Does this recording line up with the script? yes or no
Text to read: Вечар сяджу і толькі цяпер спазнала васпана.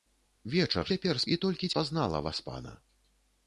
no